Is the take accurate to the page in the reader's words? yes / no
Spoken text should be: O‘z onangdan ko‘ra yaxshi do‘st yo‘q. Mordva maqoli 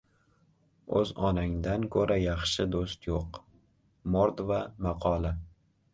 yes